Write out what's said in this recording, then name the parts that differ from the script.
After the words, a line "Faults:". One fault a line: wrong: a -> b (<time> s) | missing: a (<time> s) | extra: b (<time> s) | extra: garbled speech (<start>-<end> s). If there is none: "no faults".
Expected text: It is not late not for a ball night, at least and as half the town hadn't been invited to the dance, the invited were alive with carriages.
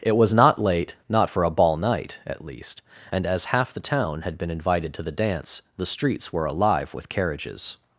It was not late not for a ball night, at least and as half the town had been invited to the dance, the streets were alive with carriages.
Faults:
wrong: is -> was (0.2 s)
wrong: hadn't -> had (4.2 s)
wrong: invited -> streets (5.9 s)